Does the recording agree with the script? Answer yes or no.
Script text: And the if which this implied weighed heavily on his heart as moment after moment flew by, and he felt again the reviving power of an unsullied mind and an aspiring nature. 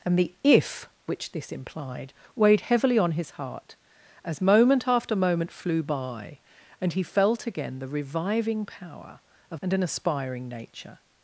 no